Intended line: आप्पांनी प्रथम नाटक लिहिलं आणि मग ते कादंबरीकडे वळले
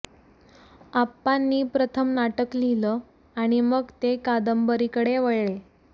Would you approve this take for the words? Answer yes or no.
yes